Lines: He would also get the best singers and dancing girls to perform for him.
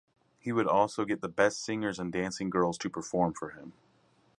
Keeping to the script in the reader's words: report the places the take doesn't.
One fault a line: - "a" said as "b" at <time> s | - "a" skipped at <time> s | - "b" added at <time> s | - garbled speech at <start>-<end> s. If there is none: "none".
none